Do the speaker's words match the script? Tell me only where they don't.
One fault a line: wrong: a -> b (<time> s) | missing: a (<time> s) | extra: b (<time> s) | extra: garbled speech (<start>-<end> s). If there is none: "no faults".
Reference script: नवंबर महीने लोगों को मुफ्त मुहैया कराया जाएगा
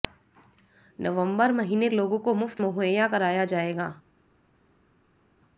no faults